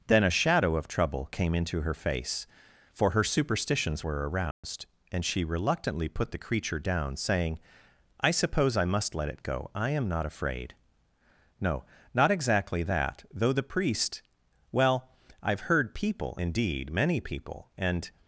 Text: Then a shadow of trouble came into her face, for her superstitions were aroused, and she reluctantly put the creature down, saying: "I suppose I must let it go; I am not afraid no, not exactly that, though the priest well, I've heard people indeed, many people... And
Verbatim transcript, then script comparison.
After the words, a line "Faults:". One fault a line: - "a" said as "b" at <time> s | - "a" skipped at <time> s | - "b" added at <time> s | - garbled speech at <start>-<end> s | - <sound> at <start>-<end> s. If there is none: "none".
Then a shadow of trouble came into her face, for her superstitions were aroused, and she reluctantly put the creature down, saying: "I suppose I must let it go; I am not afraid no, not exactly that, though the priest well, I've heard people indeed, many people... And
Faults:
- dropout at 4.5-4.6 s